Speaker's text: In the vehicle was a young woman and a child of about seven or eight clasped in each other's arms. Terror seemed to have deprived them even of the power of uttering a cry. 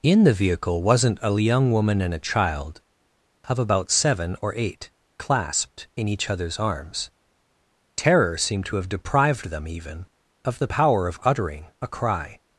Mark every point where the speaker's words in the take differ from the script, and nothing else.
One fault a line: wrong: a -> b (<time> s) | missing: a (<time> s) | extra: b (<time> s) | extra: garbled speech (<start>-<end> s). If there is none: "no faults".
wrong: was -> wasn't (0.8 s)